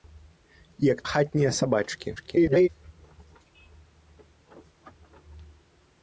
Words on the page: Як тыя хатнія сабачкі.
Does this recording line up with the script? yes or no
no